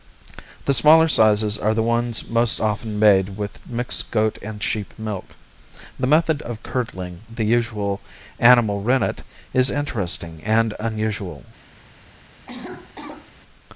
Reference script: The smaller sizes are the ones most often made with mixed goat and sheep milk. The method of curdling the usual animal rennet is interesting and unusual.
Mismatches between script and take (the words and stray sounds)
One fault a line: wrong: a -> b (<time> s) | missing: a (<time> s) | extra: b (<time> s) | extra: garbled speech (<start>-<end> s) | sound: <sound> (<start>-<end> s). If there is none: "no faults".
sound: cough (12.5-13.3 s)